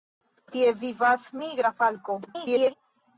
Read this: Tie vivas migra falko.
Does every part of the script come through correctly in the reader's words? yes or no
no